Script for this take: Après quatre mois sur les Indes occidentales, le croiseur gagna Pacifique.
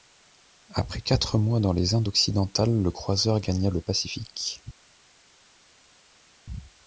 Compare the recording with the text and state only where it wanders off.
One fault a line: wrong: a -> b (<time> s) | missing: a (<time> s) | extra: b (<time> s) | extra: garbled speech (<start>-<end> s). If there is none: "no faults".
wrong: sur -> dans (1.6 s)
extra: le (3.7 s)